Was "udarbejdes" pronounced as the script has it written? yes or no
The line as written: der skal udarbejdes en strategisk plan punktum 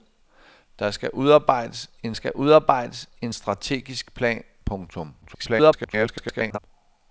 yes